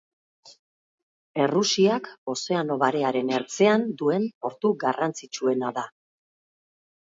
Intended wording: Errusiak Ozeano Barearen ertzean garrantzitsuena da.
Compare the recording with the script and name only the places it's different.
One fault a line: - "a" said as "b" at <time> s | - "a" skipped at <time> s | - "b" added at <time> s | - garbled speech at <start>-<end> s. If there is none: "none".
- "duen portu" added at 4.1 s